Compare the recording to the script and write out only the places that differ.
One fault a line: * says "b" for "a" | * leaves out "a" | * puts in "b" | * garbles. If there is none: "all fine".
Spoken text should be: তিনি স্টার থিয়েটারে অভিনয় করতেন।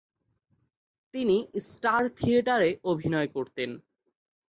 all fine